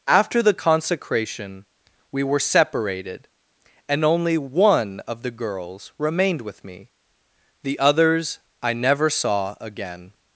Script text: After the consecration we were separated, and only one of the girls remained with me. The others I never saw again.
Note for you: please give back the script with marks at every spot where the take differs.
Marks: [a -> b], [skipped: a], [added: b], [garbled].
After the consecration we were separated, and only one of the girls remained with me. The others I never saw again.